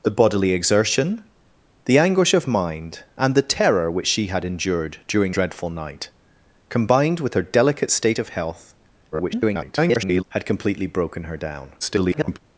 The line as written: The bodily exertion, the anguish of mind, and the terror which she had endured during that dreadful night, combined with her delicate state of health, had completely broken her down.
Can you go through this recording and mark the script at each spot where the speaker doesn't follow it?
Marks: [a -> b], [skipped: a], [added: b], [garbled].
The bodily exertion, the anguish of mind, and the terror which she had endured during [skipped: that] dreadful night, combined with her delicate state of health, [garbled] had completely broken her down. [garbled]